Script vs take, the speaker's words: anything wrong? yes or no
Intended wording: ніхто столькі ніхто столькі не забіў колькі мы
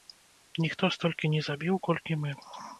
yes